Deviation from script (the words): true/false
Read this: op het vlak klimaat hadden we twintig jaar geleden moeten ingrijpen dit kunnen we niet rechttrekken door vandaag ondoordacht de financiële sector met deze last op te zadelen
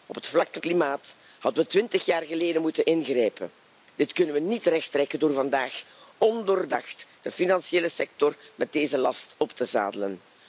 false